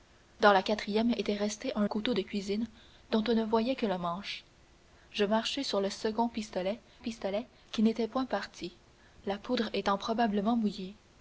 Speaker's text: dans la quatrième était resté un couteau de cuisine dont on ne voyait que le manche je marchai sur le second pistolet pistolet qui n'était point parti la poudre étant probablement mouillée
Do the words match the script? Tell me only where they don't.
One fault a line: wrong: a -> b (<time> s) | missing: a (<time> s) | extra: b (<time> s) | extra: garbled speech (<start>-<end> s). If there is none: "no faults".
no faults